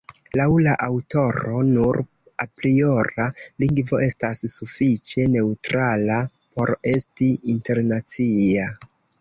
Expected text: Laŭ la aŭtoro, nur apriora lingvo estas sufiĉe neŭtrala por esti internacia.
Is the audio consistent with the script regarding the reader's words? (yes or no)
yes